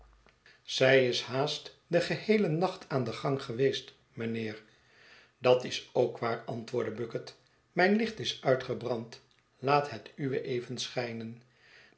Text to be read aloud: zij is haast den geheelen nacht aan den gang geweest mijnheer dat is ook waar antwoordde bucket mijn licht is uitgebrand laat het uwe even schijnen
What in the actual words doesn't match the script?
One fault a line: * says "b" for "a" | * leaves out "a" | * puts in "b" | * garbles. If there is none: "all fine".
all fine